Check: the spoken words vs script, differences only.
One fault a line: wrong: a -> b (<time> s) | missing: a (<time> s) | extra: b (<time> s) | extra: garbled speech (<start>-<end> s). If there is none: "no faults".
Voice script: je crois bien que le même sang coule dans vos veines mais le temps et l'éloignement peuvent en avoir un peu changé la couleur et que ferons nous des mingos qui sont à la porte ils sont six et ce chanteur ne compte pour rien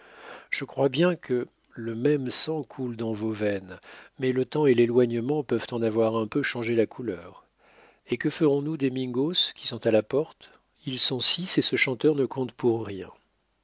no faults